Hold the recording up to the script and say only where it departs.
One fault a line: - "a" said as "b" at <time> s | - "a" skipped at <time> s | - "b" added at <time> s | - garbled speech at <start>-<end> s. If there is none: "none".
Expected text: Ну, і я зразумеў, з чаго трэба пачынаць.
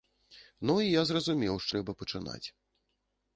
- "чаго" skipped at 1.7 s